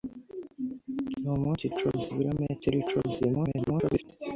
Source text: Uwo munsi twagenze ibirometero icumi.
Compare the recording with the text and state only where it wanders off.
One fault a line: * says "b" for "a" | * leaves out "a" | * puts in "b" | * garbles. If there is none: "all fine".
* says "icumi" for "twagenze"
* garbles